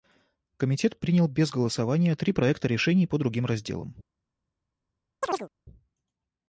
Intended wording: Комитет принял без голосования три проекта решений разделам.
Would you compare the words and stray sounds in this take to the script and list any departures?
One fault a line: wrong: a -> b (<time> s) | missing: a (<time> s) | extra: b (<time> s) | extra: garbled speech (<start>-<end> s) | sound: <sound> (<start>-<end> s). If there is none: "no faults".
extra: по другим (3.0 s)
sound: chirp (5.2-5.5 s)